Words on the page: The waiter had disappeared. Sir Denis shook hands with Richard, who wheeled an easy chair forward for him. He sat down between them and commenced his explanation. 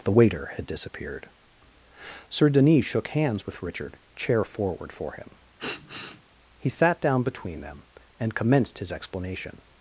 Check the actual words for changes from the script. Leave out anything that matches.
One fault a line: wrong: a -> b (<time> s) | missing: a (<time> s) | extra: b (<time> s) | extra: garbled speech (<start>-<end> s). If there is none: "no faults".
missing: who wheeled an easy (4.0 s)